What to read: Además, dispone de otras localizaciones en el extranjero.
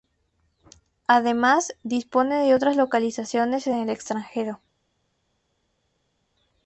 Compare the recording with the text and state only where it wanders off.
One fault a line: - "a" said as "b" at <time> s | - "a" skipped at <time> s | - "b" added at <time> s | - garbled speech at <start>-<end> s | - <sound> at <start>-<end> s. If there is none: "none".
none